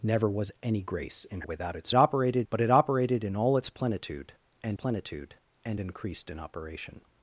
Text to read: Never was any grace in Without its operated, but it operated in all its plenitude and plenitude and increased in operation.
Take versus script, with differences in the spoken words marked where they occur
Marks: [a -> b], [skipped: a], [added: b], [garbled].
Never was any grace in Without its operated, but it operated in all its plenitude and plenitude and increased in operation.